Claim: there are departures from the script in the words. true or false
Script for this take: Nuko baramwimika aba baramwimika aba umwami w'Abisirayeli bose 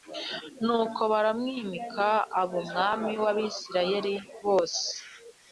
true